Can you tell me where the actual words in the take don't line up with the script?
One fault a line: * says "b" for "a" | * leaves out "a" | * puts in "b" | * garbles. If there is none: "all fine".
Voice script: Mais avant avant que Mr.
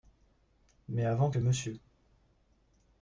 * leaves out "avant"